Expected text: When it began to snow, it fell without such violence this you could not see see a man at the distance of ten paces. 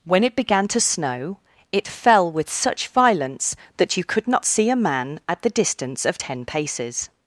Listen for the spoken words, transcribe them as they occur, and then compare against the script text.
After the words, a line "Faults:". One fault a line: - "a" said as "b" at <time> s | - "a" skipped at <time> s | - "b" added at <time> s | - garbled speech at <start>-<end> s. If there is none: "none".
When it began to snow, it fell with such violence that you could not see a man at the distance of ten paces.
Faults:
- "without" said as "with" at 2.3 s
- "this" said as "that" at 3.8 s
- "see" skipped at 4.7 s